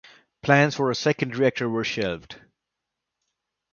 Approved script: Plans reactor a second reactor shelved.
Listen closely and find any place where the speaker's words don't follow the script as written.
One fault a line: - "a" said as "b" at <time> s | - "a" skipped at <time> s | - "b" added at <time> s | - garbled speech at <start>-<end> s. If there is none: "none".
- "reactor" said as "for" at 0.7 s
- "were" added at 1.7 s